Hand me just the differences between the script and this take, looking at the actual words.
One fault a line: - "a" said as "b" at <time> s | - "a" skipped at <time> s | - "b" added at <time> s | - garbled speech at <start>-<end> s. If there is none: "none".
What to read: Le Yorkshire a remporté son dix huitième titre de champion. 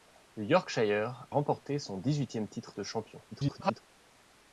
- "a" skipped at 1.3 s
- garbled speech at 3.3-3.8 s